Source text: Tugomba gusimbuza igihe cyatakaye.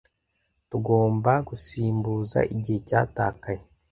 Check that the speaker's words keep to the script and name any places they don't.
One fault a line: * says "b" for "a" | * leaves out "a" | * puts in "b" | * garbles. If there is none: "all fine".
all fine